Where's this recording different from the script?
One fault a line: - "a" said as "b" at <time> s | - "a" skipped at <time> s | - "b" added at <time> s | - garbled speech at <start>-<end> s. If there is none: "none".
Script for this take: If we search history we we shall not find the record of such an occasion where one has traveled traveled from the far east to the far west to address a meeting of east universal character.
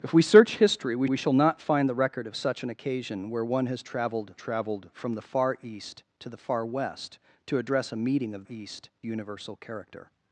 none